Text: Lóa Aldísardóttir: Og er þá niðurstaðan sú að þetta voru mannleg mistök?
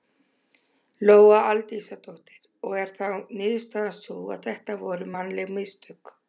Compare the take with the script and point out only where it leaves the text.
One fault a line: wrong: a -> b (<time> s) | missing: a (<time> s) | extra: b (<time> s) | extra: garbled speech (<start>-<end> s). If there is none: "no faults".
no faults